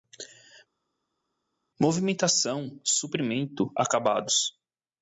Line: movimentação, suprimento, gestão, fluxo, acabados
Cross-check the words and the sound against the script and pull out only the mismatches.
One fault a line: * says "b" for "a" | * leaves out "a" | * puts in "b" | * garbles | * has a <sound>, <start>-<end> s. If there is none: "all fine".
* leaves out "gestão fluxo"